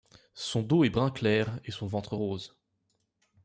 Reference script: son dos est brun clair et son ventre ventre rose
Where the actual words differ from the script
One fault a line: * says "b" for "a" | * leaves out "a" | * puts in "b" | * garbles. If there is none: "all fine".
* leaves out "ventre"